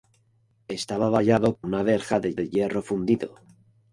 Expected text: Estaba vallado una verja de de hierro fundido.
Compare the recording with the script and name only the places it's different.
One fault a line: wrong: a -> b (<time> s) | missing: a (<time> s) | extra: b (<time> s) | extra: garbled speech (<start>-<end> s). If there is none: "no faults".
no faults